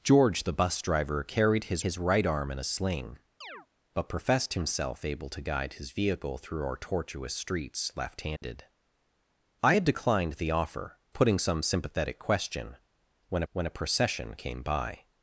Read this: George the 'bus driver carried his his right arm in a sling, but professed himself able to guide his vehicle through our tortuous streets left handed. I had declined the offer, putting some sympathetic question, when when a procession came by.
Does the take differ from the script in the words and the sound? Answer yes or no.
yes